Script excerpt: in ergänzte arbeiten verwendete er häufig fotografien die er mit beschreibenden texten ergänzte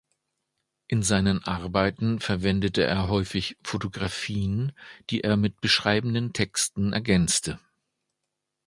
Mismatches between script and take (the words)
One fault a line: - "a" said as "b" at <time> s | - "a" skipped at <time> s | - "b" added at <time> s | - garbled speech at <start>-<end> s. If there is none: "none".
- "ergänzte" said as "seinen" at 1.0 s